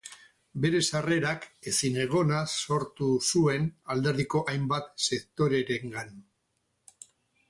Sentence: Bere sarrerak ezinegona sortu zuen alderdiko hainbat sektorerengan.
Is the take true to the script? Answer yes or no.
yes